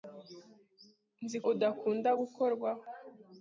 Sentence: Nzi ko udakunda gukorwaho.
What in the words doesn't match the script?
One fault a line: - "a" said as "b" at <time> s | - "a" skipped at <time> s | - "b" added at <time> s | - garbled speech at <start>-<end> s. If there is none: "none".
- "ko" skipped at 1.4 s